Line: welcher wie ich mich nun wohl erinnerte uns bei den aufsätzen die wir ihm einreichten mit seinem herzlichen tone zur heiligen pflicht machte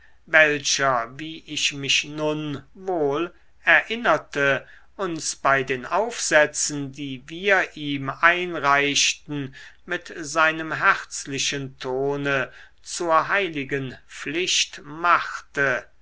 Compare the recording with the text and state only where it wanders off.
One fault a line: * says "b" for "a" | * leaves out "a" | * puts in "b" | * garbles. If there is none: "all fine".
all fine